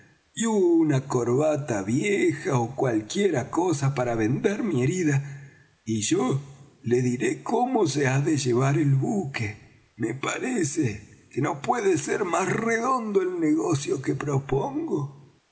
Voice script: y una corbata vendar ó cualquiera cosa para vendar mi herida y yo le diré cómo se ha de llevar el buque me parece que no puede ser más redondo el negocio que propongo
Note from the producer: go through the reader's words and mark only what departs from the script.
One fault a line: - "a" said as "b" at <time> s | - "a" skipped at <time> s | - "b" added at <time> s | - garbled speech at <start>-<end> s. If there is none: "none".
- "vendar" said as "vieja" at 1.8 s